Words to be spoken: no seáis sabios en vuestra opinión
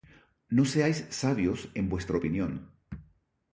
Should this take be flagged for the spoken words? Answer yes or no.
no